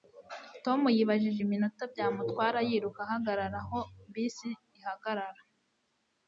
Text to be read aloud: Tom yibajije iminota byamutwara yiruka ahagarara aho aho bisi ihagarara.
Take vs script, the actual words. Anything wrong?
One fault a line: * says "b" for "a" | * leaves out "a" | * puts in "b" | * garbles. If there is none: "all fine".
* leaves out "aho"